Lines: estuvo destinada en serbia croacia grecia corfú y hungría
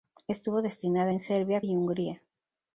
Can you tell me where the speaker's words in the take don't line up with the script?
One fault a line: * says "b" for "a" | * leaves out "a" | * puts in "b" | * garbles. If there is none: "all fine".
* leaves out "croacia grecia corfú"